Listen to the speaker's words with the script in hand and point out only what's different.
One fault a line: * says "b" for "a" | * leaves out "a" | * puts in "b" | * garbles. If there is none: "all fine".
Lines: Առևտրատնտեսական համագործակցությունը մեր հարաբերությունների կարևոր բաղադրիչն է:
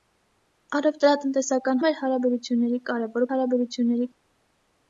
* leaves out "համագործակցությունը"
* says "հարաբերությունների" for "բաղադրիչն"